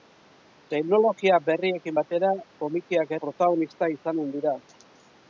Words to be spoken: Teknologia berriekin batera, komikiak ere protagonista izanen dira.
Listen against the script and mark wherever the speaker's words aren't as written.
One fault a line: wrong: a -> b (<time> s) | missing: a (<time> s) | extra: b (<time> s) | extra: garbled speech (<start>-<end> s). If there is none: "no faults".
missing: ere (3.1 s)